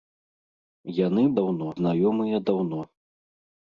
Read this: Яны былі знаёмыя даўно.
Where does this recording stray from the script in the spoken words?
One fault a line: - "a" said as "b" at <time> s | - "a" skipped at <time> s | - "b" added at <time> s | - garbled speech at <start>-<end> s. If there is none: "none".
- "былі" said as "даўно" at 1.4 s